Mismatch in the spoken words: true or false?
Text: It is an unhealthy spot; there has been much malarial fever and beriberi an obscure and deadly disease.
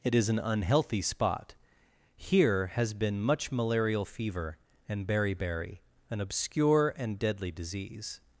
true